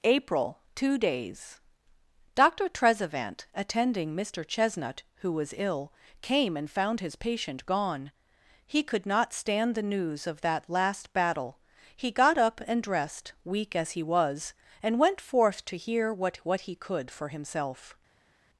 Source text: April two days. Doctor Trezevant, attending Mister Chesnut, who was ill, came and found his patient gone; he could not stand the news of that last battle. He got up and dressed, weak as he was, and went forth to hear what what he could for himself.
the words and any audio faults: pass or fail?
pass